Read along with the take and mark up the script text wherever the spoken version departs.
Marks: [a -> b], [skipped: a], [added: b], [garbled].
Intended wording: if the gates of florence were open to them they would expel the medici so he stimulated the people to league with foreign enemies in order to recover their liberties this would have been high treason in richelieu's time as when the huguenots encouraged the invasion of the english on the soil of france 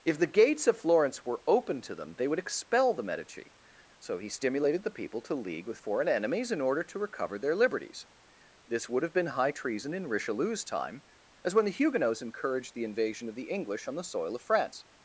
if the gates of florence were open to them they would expel the medici so he stimulated the people to league with foreign enemies in order to recover their liberties this would have been high treason in richelieu's time as when the huguenots encouraged the invasion of the english on the soil of france